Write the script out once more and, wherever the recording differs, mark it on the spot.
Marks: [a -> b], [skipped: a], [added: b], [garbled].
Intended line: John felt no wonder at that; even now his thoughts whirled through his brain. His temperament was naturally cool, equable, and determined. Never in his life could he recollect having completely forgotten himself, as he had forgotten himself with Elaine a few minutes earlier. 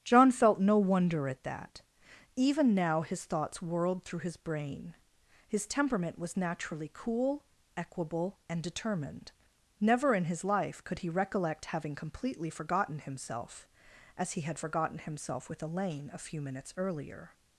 John felt no wonder at that; even now his thoughts whirled through his brain. His temperament was naturally cool, equable, and determined. Never in his life could he recollect having completely forgotten himself, as he had forgotten himself with Elaine a few minutes earlier.